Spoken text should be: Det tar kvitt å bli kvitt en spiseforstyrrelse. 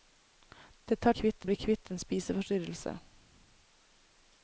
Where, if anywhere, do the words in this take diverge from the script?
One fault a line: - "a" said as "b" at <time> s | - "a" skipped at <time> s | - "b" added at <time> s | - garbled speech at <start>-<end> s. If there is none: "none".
none